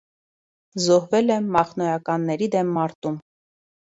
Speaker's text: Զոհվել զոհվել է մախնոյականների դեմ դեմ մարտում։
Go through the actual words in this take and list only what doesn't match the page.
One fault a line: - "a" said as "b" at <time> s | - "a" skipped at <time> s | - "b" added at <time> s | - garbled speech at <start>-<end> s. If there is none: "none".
- "զոհվել" skipped at 1.3 s
- "դեմ" skipped at 2.7 s